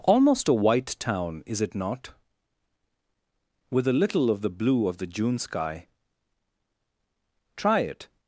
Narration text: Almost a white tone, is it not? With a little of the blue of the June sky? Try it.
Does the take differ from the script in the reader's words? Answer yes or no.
yes